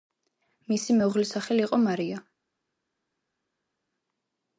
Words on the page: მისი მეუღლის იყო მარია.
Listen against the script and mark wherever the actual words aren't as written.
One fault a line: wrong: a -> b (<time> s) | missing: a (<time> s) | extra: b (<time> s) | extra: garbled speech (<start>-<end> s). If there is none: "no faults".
extra: სახელი (1.4 s)